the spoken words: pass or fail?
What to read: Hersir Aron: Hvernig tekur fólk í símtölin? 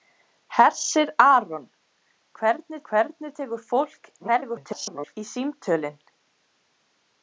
fail